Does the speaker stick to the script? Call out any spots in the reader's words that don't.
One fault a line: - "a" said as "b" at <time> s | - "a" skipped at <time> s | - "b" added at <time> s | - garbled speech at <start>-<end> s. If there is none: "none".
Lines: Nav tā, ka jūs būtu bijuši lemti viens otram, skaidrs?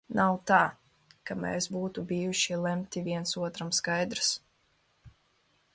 - "jūs" said as "mēs" at 1.4 s